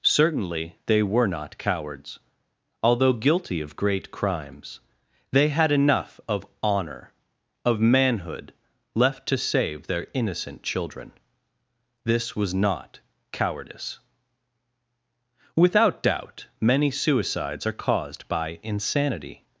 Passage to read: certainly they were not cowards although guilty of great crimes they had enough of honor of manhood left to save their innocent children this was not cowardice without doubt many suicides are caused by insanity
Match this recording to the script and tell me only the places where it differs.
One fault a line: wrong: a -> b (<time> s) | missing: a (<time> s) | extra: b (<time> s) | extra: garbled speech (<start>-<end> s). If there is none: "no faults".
no faults